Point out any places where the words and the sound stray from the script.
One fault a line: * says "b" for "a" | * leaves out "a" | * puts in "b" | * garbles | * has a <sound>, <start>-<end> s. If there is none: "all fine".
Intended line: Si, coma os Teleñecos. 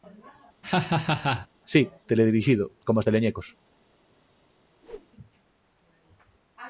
* has a laugh, 0.6-1.5 s
* puts in "teledirixido"
* has a whoosh, 4.8-5.1 s